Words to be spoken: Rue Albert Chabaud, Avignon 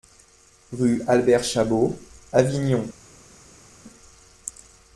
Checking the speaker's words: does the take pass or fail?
pass